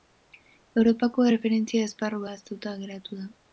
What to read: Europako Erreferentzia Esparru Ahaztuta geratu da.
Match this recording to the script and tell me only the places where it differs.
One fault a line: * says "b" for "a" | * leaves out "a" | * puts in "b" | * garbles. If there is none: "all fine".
all fine